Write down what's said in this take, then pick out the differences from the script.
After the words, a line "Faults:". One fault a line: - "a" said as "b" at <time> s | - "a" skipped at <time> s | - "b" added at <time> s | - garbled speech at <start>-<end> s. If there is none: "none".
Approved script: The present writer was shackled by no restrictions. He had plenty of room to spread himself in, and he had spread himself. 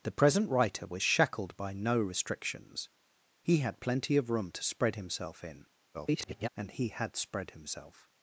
The present writer was shackled by no restrictions. He had plenty of room to spread himself in, [garbled] and he had spread himself.
Faults:
- garbled speech at 5.9-6.5 s